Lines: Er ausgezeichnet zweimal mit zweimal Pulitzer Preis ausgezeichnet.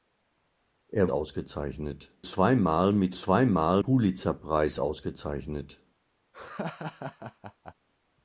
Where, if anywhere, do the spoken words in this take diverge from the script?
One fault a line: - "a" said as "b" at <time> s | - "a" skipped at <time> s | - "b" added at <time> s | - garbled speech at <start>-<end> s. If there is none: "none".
none